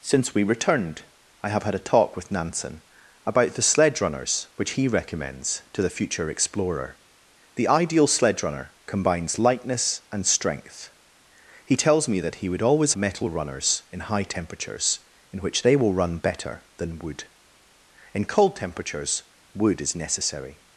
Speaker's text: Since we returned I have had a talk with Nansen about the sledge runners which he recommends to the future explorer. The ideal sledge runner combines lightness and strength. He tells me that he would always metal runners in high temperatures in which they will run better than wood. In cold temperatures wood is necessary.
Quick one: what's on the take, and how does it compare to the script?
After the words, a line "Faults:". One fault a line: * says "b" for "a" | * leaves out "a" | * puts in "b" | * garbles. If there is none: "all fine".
Since we returned I have had a talk with Nansen about the sledge runners which he recommends to the future explorer. The ideal sledge runner combines lightness and strength. He tells me that he would always metal runners in high temperatures in which they will run better than wood. In cold temperatures wood is necessary.
Faults:
all fine